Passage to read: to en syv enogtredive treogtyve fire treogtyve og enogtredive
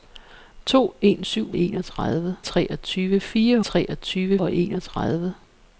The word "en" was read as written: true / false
true